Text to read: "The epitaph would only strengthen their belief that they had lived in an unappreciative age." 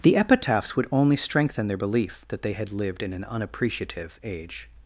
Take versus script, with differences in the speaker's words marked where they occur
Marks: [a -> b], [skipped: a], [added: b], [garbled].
"The [epitaph -> epitaphs] would only strengthen their belief that they had lived in an unappreciative age."